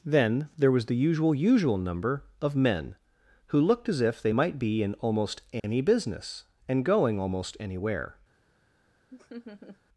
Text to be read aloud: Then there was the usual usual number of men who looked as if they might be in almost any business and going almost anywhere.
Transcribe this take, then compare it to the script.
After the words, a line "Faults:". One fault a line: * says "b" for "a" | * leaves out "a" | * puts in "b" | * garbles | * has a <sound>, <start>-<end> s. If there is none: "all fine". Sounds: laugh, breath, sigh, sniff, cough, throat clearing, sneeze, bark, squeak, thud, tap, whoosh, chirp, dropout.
Then there was the usual usual number of men who looked as if they might be in almost any business and going almost anywhere.
Faults:
* has a dropout, 5.6-5.6 s
* has a laugh, 9.1-9.8 s